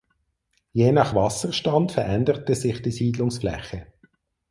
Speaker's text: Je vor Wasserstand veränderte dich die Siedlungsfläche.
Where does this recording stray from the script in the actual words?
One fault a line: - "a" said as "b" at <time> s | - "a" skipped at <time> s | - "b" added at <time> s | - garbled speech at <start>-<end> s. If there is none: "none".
- "vor" said as "nach" at 0.9 s
- "dich" said as "sich" at 2.5 s